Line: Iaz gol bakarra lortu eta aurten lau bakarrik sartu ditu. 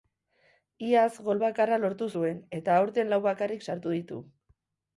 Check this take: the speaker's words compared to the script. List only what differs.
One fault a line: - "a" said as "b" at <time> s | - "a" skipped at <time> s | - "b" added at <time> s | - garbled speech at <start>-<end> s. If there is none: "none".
- "zuen" added at 2.2 s